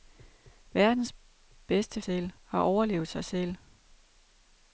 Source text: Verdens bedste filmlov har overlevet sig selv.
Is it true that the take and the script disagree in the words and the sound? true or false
true